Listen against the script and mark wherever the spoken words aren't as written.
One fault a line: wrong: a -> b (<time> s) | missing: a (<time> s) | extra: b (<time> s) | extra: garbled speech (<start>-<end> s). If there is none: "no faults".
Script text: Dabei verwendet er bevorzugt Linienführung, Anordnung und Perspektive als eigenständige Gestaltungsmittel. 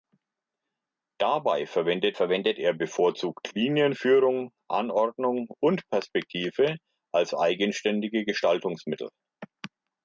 extra: verwendet (2.1 s)